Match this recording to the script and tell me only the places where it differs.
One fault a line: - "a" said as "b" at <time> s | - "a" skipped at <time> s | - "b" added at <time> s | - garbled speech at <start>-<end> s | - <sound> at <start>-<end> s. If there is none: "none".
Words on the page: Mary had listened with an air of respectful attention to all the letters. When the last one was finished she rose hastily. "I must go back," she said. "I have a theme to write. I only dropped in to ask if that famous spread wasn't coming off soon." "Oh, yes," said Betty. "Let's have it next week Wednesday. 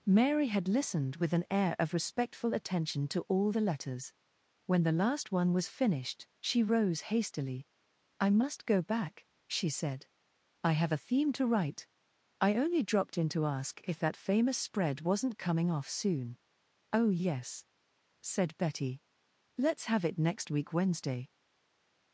none